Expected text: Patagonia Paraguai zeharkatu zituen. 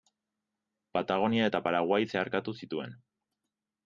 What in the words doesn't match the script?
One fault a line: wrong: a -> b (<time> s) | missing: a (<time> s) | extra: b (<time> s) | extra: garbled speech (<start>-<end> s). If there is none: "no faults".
extra: eta (1.5 s)